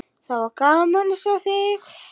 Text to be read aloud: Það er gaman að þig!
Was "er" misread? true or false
true